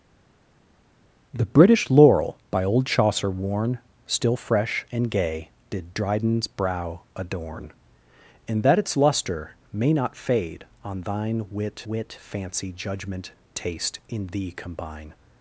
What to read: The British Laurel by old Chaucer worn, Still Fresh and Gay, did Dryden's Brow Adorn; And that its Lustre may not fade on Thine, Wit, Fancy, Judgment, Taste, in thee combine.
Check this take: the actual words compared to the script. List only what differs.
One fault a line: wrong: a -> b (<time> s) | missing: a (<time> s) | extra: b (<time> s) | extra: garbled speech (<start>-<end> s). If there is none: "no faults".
extra: Wit (11.9 s)